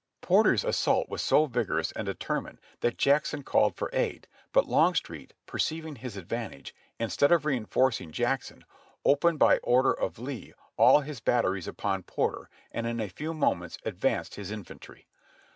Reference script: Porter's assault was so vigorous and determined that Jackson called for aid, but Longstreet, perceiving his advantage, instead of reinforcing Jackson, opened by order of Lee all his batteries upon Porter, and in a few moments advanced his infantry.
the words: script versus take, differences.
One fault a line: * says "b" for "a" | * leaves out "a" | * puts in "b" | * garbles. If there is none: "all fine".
all fine